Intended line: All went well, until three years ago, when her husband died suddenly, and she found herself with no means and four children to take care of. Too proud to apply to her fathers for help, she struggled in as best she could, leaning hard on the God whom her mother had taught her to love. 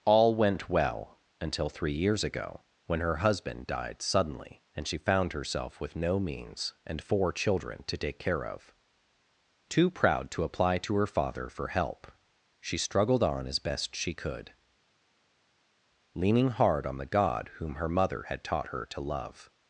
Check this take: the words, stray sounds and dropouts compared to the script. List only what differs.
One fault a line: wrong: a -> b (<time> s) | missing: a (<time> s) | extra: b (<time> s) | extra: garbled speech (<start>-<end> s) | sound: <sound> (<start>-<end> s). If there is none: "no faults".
wrong: fathers -> father (11.1 s)
wrong: in -> on (13.2 s)